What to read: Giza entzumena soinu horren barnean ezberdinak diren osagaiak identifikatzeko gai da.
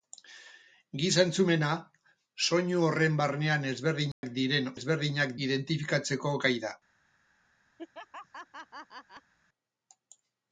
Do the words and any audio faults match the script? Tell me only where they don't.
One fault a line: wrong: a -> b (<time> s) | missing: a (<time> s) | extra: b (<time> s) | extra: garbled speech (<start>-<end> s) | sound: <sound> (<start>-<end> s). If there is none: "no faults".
sound: dropout (4.1-4.2 s)
wrong: osagaiak -> ezberdinak (4.8 s)
sound: laugh (7.8-9.3 s)